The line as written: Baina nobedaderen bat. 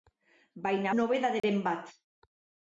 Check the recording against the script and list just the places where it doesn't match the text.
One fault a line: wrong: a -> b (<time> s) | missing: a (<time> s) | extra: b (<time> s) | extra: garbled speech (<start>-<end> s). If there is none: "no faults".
no faults